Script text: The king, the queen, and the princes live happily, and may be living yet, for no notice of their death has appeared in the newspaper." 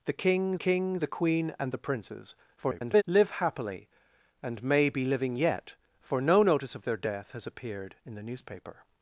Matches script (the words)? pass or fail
fail